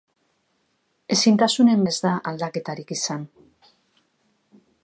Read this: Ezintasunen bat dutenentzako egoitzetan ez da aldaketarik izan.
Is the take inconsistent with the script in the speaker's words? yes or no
yes